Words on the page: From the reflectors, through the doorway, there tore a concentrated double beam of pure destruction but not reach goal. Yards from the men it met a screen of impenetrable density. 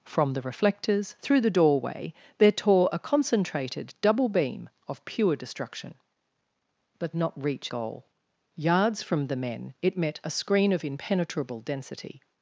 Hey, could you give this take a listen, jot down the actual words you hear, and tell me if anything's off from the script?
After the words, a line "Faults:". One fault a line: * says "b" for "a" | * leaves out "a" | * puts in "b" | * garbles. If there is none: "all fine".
From the reflectors, through the doorway, there tore a concentrated double beam of pure destruction but not reach goal. Yards from the men it met a screen of impenetrable density.
Faults:
all fine